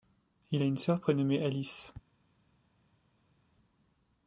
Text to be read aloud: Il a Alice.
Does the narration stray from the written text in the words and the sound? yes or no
yes